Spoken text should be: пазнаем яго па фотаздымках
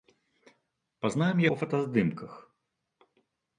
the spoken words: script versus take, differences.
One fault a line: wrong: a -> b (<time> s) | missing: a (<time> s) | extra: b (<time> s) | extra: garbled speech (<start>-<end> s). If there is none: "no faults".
missing: яго (1.4 s)